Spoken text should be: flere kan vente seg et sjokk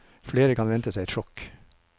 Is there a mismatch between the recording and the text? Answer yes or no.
no